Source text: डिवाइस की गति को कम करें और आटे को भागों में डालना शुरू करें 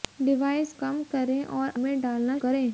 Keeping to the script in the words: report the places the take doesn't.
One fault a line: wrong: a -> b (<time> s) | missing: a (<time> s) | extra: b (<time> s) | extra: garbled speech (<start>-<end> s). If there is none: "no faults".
missing: की गति को (0.7 s)
missing: आटे को भागों (1.7 s)
missing: शुरू (2.4 s)